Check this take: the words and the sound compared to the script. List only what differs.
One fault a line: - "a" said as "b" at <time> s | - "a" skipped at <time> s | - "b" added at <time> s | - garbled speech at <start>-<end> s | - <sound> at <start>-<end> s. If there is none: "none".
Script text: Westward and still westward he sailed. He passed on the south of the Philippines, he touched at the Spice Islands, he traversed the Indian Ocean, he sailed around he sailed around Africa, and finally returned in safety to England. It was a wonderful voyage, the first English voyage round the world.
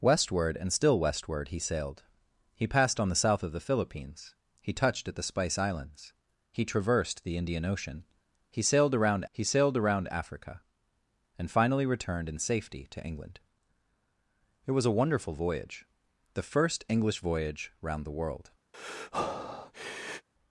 - breath at 18.7-20.3 s